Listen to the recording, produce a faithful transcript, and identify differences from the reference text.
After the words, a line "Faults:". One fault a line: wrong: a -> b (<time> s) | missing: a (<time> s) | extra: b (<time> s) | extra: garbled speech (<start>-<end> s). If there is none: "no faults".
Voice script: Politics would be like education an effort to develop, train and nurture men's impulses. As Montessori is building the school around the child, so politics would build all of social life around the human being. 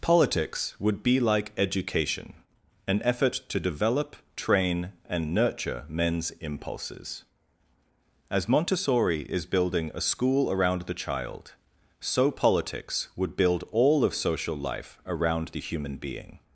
Politics would be like education an effort to develop, train and nurture men's impulses. As Montessori is building a school around the child, so politics would build all of social life around the human being.
Faults:
wrong: the -> a (9.9 s)